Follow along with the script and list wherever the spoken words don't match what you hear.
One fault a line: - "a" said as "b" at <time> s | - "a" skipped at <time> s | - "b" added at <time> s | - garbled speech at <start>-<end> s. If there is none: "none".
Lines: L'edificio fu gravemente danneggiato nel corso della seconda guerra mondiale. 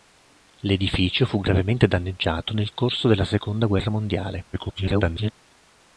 - garbled speech at 4.5-5.3 s